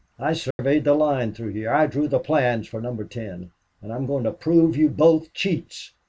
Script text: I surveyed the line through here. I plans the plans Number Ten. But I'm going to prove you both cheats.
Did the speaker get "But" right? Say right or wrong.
wrong